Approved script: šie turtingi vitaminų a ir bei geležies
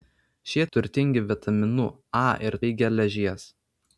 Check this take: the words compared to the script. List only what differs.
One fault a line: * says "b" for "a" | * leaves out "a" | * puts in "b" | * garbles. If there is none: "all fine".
all fine